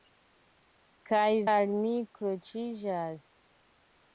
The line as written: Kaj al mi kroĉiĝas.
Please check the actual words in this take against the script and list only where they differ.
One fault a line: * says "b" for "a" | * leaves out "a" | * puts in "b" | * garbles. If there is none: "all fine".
all fine